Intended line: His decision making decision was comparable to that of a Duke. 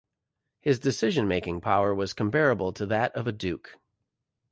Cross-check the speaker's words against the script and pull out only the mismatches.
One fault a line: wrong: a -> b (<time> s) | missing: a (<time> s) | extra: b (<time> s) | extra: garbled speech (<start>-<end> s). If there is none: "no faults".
wrong: decision -> power (1.6 s)